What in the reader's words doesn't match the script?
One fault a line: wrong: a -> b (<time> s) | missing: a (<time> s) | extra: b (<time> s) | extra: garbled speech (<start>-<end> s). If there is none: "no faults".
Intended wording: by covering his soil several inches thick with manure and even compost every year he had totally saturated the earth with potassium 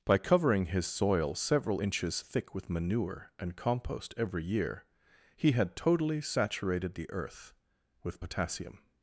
missing: even (3.6 s)